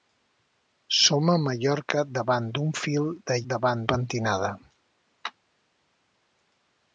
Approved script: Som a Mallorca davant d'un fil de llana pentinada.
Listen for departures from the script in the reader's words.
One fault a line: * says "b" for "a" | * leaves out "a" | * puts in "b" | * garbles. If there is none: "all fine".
* says "davant" for "llana"